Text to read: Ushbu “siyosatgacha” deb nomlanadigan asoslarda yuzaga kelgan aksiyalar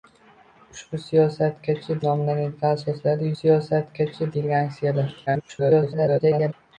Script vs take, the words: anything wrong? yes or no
yes